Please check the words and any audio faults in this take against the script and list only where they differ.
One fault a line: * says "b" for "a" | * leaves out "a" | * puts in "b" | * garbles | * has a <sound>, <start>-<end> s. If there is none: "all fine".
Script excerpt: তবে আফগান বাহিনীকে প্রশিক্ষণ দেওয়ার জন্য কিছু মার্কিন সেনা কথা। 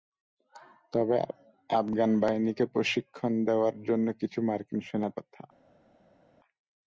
all fine